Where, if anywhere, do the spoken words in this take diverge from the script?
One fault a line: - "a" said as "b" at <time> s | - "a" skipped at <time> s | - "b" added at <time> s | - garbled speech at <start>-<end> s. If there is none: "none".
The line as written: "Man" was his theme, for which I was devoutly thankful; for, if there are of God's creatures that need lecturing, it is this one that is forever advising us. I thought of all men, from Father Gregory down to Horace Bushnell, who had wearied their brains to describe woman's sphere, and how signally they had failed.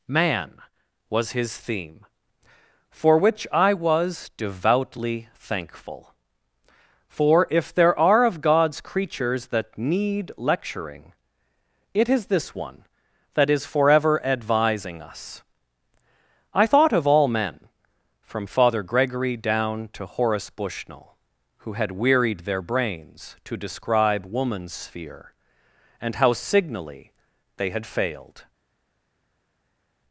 none